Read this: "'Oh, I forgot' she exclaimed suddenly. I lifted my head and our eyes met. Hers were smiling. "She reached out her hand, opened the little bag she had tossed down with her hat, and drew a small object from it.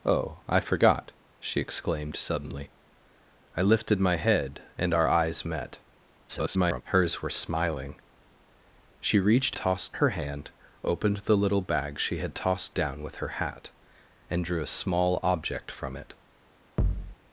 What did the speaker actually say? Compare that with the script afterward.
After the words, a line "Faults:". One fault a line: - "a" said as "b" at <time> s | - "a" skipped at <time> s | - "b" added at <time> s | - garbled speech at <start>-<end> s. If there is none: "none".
"'Oh, I forgot' she exclaimed suddenly. I lifted my head and our eyes met. [garbled] Hers were smiling. "She reached tossed her hand, opened the little bag she had tossed down with her hat, and drew a small object from it.
Faults:
- garbled speech at 6.3-6.8 s
- "out" said as "tossed" at 9.5 s